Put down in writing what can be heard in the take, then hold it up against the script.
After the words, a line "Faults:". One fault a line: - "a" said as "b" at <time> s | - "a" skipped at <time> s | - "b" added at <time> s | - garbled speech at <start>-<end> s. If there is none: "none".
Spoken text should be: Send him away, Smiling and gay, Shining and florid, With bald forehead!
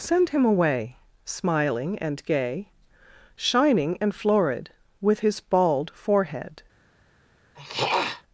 Send him away, Smiling and gay, Shining and florid, With his bald forehead!
Faults:
- "his" added at 5.2 s